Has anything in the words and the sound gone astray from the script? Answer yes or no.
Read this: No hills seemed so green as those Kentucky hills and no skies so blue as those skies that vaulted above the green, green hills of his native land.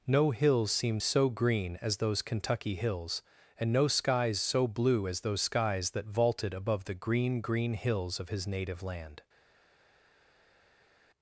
no